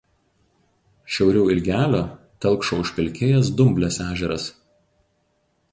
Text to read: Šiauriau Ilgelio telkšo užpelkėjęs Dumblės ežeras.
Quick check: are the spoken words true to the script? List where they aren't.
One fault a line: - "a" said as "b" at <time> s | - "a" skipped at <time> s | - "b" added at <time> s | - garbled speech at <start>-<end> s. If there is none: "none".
none